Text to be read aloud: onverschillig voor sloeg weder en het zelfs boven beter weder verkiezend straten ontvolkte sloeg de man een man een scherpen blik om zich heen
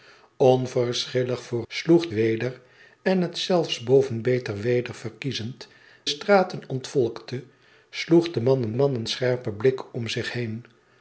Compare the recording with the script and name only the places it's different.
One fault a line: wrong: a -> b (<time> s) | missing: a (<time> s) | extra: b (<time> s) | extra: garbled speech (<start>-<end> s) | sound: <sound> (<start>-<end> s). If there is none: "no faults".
no faults